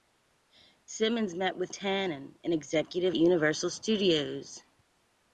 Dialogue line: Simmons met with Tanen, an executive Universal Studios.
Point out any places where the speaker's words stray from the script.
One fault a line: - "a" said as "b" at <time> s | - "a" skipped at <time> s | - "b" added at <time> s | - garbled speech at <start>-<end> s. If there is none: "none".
none